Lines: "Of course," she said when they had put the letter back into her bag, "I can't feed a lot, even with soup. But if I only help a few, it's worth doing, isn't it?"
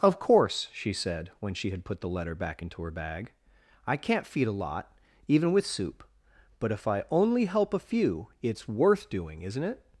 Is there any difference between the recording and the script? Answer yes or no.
yes